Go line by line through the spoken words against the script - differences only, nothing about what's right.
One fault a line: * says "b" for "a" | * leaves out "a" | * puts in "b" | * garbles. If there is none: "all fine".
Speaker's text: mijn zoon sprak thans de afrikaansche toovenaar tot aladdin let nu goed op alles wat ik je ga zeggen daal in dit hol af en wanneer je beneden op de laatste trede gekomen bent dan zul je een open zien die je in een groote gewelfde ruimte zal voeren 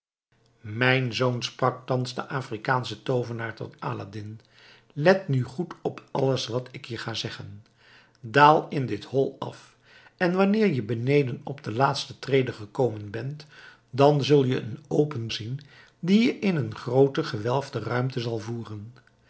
all fine